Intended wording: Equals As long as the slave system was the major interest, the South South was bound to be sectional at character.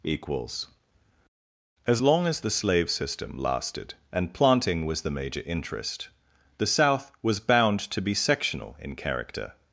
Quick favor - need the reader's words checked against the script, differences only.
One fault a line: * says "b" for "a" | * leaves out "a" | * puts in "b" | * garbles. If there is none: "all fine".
* puts in "lasted and planting"
* leaves out "South"
* says "in" for "at"